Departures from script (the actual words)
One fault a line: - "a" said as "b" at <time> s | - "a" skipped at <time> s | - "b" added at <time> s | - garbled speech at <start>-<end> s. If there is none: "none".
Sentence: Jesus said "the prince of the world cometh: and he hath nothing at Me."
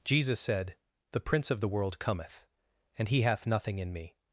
- "at" said as "in" at 3.8 s